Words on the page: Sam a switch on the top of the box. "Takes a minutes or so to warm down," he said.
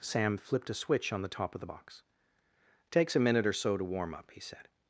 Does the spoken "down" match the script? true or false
false